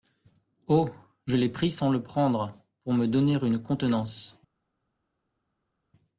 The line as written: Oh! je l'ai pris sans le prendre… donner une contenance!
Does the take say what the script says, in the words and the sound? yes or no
no